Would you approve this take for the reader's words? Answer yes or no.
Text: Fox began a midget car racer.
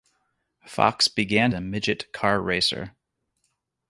yes